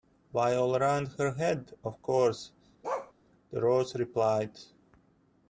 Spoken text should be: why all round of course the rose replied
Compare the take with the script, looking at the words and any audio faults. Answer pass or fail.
fail